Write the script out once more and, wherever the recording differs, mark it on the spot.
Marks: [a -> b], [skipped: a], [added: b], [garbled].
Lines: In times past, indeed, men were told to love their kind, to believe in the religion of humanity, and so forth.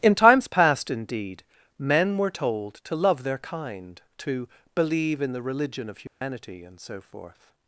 In times past, indeed, men were told to love their kind, to believe in the religion of humanity, and so forth.